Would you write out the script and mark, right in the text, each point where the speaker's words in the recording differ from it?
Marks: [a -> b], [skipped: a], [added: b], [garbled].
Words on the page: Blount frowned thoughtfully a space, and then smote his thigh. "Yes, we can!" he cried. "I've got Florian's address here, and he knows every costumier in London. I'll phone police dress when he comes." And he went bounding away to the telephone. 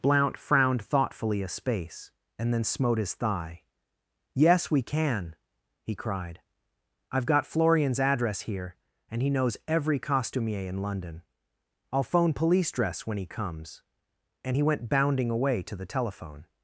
Blount frowned thoughtfully a space, and then smote his thigh. "Yes, we can!" he cried. "I've got Florian's address here, and he knows every costumier in London. I'll phone police dress when he comes." And he went bounding away to the telephone.